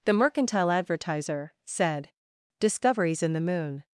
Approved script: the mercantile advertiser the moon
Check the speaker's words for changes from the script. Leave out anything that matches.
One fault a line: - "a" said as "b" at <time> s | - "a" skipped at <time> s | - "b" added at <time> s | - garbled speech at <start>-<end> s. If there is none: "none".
- "said discoveries in" added at 1.6 s